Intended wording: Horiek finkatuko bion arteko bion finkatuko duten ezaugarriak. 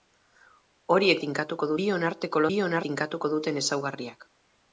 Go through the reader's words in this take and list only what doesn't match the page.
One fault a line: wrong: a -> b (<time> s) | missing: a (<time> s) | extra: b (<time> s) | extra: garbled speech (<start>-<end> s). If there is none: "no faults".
no faults